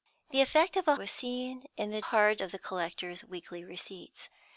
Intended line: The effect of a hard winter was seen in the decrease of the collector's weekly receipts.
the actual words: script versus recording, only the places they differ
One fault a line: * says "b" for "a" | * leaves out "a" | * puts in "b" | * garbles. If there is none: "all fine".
* leaves out "hard winter"
* says "hard" for "decrease"